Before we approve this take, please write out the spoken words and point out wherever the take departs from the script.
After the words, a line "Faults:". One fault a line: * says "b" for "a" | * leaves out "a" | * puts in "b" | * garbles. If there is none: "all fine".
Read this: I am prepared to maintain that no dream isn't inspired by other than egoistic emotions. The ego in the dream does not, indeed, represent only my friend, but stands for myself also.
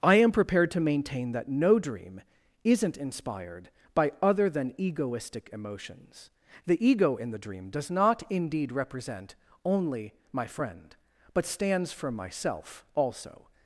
I am prepared to maintain that no dream isn't inspired by other than egoistic emotions. The ego in the dream does not, indeed, represent only my friend, but stands for myself also.
Faults:
all fine